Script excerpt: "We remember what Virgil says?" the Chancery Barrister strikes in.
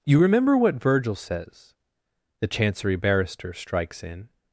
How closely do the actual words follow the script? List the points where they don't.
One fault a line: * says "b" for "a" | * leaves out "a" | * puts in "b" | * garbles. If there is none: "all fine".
* says "You" for "We"